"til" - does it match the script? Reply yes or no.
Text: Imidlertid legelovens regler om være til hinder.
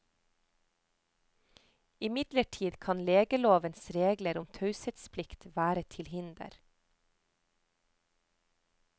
yes